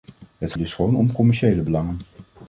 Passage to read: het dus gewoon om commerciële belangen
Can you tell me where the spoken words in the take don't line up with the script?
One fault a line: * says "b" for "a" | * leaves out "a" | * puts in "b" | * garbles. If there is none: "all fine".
all fine